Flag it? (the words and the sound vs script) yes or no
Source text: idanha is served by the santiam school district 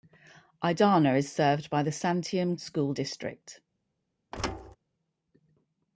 yes